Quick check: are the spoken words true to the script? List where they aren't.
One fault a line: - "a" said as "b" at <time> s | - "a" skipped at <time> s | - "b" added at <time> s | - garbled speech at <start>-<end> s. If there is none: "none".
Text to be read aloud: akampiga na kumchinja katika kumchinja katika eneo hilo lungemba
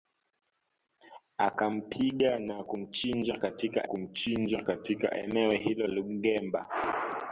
none